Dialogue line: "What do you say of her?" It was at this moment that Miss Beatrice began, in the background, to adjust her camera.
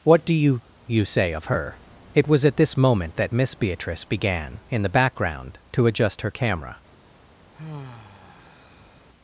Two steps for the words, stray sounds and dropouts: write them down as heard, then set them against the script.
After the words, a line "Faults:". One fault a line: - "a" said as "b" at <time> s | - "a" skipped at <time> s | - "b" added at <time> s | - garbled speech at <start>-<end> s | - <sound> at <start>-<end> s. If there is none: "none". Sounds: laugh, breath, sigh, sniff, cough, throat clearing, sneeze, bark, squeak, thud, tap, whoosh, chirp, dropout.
"What do you you say of her?" It was at this moment that Miss Beatrice began, in the background, to adjust her camera.
Faults:
- "you" added at 0.9 s
- sigh at 7.5-9.1 s